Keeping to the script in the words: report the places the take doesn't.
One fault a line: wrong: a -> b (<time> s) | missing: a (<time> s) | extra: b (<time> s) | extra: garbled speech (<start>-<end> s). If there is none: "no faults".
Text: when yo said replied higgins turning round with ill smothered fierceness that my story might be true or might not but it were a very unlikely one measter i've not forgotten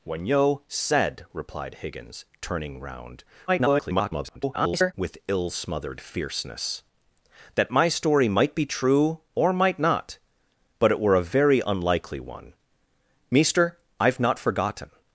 extra: garbled speech (3.5-4.9 s)